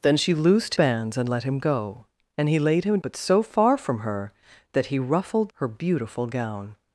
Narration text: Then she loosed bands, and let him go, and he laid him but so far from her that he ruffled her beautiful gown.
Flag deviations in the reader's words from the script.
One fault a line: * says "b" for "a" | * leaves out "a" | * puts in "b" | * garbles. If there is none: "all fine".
all fine